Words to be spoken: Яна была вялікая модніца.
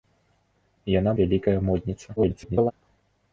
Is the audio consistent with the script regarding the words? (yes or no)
no